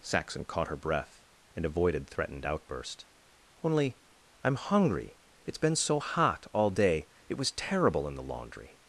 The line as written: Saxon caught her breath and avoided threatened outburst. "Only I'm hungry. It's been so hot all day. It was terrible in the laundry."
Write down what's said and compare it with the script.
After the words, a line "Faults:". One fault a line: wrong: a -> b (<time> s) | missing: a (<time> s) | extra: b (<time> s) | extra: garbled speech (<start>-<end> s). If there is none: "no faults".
Saxon caught her breath and avoided threatened outburst. "Only I'm hungry. It's been so hot all day. It was terrible in the laundry."
Faults:
no faults